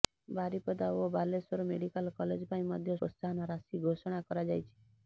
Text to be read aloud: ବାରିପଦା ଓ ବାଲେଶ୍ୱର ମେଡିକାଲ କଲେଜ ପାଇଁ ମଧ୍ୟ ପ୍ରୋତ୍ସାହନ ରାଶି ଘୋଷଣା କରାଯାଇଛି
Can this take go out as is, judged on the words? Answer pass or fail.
pass